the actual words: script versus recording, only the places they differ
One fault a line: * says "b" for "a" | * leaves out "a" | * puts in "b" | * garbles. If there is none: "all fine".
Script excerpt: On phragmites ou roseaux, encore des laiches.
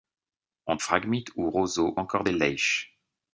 all fine